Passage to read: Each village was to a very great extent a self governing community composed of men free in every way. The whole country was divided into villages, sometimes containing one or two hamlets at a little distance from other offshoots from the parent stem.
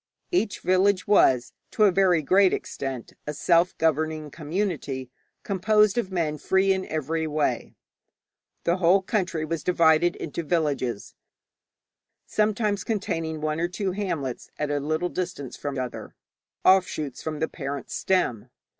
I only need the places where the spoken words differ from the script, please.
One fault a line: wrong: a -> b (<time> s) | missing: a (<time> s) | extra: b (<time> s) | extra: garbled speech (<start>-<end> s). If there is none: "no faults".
no faults